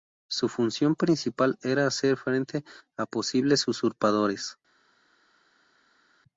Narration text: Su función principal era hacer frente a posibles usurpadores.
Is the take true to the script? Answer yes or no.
yes